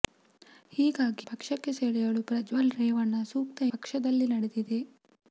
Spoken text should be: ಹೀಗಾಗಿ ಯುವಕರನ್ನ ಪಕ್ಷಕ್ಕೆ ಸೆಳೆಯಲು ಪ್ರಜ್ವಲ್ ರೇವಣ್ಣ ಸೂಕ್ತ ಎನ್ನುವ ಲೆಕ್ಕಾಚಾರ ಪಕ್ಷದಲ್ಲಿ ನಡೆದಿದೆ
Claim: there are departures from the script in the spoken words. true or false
true